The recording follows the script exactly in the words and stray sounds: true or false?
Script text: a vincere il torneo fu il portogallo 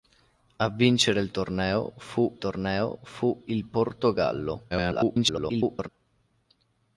false